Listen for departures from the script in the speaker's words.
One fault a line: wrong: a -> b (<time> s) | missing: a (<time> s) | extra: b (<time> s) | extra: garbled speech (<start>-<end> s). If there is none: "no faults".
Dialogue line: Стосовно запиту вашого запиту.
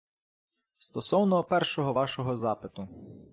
wrong: запиту -> першого (1.4 s)